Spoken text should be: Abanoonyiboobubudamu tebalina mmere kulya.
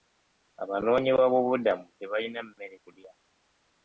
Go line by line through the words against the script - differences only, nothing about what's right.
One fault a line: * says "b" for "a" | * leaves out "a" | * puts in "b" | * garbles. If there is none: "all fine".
all fine